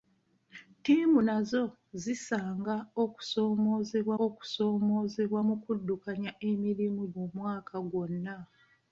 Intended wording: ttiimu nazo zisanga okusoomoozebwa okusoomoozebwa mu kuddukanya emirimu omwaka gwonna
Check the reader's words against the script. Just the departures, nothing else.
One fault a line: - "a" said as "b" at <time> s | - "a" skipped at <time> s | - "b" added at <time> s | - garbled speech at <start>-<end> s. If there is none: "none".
none